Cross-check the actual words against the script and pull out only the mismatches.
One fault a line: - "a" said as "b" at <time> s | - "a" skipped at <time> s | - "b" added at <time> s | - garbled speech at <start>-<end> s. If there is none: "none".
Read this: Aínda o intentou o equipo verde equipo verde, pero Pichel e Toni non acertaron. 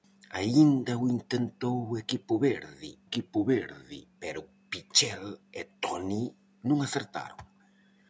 none